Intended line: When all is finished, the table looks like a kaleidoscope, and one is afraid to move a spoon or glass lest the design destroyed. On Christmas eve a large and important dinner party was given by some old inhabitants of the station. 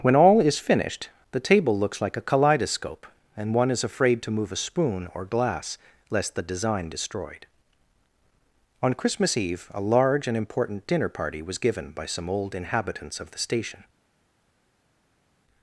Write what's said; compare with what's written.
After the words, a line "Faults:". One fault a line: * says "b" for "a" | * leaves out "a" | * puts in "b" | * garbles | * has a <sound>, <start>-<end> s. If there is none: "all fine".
When all is finished, the table looks like a kaleidoscope, and one is afraid to move a spoon or glass lest the design destroyed. On Christmas eve a large and important dinner party was given by some old inhabitants of the station.
Faults:
all fine